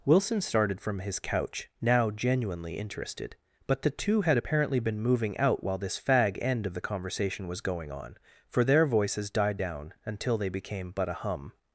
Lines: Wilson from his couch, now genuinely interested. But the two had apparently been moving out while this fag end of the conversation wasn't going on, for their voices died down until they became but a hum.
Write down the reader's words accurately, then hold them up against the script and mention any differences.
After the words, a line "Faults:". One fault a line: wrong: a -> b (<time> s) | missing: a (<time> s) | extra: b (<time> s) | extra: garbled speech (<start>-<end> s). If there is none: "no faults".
Wilson started from his couch, now genuinely interested. But the two had apparently been moving out while this fag end of the conversation was going on, for their voices died down until they became but a hum.
Faults:
extra: started (0.4 s)
wrong: wasn't -> was (7.5 s)